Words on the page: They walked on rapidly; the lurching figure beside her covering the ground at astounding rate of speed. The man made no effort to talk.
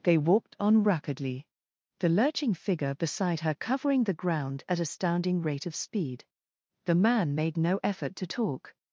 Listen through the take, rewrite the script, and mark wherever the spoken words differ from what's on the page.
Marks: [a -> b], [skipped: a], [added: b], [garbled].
They walked on rapidly; the lurching figure beside her covering the ground at astounding rate of speed. The man made no effort to talk.